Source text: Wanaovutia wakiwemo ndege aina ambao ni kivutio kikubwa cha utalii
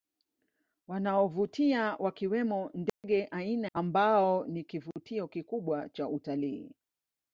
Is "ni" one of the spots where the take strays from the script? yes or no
no